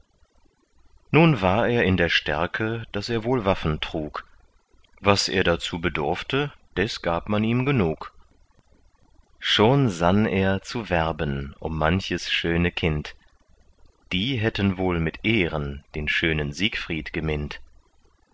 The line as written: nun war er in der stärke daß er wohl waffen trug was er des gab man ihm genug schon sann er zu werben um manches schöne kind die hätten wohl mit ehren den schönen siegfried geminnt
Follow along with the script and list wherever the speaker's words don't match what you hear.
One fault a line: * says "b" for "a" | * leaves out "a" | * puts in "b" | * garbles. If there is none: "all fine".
* puts in "dazu bedurfte"